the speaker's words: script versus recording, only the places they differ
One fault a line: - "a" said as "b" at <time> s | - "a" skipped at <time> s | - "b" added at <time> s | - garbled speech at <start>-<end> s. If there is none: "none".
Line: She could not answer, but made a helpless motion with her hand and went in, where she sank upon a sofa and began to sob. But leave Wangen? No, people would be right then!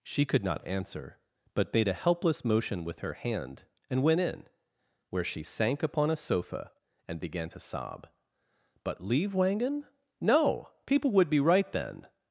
none